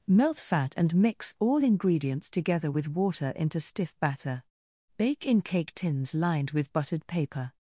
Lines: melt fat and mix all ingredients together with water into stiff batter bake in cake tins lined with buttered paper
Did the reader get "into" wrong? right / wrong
right